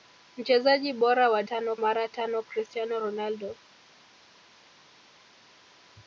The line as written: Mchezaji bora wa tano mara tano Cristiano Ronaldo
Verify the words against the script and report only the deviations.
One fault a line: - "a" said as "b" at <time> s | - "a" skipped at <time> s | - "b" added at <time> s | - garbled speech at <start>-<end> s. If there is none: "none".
none